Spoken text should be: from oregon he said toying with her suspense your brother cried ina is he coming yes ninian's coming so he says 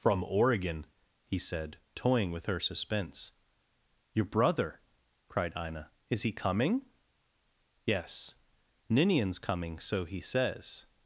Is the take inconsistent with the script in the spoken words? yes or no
no